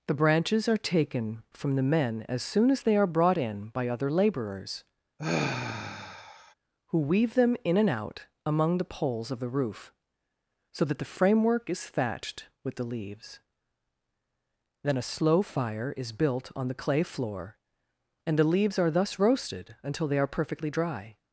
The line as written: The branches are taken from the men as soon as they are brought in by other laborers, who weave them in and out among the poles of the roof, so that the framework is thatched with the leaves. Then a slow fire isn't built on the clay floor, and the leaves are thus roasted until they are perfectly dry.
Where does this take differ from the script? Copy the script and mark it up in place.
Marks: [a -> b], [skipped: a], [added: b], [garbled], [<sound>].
The branches are taken from the men as soon as they are brought in by other laborers, [sigh] who weave them in and out among the poles of the roof, so that the framework is thatched with the leaves. Then a slow fire [isn't -> is] built on the clay floor, and the leaves are thus roasted until they are perfectly dry.